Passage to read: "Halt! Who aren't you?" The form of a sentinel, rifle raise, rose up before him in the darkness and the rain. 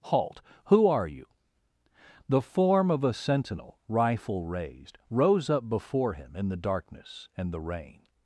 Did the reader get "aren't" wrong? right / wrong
wrong